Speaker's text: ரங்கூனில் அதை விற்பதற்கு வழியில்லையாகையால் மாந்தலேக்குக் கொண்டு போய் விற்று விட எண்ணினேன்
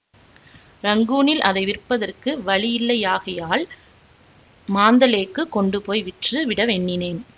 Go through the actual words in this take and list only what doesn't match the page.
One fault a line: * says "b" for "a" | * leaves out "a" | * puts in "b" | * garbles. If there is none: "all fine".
all fine